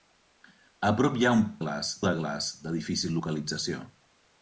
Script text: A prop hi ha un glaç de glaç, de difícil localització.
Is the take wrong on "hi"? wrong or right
right